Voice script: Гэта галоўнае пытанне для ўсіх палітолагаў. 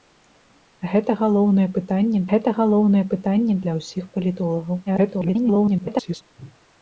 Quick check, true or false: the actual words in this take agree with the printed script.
false